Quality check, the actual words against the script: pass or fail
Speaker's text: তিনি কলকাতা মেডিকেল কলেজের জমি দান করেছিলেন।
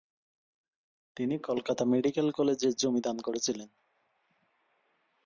pass